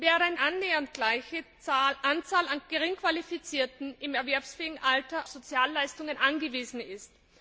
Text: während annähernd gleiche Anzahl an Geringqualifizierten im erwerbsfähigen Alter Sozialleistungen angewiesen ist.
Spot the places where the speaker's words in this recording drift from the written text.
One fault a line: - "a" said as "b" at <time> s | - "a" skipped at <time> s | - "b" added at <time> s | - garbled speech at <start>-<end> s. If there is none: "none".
none